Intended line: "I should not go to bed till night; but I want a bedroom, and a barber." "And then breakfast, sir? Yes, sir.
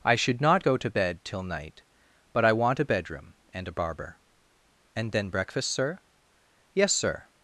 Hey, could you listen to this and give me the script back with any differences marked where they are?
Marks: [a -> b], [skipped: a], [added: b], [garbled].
"I should not go to bed till night; but I want a bedroom, and a barber." "And then breakfast, sir? Yes, sir.